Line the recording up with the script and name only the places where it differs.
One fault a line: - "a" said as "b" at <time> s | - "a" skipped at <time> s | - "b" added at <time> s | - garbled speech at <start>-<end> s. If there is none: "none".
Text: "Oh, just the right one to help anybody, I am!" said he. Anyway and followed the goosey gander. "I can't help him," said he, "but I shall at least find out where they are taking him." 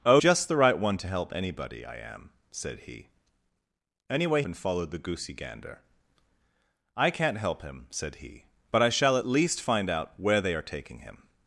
none